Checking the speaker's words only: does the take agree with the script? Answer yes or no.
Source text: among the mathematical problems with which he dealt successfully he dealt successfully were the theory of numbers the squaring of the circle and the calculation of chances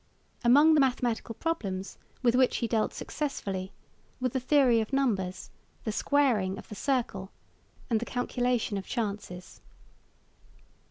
no